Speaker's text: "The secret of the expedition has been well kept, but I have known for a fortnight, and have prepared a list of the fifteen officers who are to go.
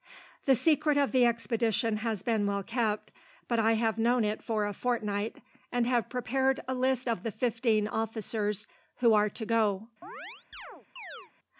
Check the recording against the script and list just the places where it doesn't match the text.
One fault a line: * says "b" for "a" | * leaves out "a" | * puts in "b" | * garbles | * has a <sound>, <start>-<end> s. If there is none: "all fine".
* puts in "it"
* has a chirp, 10.0-11.3 s